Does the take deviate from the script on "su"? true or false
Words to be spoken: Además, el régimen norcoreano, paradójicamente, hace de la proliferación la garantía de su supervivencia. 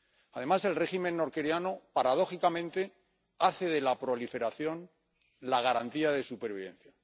true